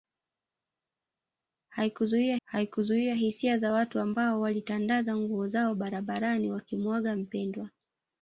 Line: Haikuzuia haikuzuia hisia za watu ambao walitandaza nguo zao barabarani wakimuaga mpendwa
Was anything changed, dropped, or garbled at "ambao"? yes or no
no